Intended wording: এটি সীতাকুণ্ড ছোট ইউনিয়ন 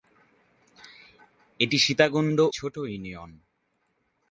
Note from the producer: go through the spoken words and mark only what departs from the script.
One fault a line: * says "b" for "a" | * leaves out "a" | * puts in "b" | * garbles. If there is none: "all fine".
all fine